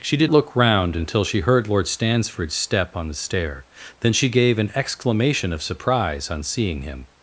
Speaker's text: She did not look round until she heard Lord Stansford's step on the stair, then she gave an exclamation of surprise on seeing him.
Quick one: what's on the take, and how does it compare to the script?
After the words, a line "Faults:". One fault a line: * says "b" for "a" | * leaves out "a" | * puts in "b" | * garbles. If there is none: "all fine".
She did look round until she heard Lord Stansford's step on the stair, then she gave an exclamation of surprise on seeing him.
Faults:
* leaves out "not"